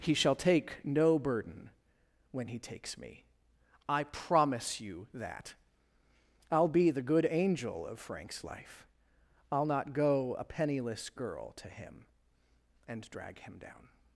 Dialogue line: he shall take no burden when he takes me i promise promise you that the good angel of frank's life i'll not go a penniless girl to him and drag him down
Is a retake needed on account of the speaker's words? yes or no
yes